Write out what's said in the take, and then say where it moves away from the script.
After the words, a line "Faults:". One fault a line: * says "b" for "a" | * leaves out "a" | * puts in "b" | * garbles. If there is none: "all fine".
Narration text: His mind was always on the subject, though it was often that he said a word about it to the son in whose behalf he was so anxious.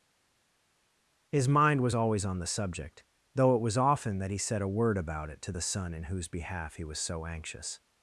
His mind was always on the subject, though it was often that he said a word about it to the son in whose behalf he was so anxious.
Faults:
all fine